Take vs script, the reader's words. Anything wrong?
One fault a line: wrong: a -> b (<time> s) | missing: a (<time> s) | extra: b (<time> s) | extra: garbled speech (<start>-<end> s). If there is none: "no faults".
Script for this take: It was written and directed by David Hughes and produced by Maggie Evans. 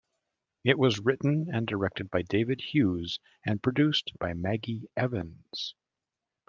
no faults